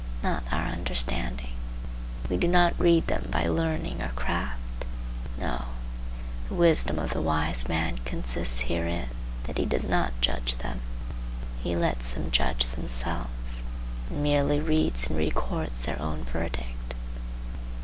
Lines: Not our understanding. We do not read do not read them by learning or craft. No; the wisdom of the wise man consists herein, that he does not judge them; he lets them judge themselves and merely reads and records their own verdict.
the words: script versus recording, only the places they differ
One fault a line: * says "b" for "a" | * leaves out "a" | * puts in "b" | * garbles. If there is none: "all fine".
* leaves out "do not read"